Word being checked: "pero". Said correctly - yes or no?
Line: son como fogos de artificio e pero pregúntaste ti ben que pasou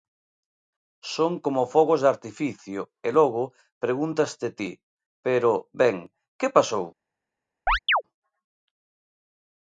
no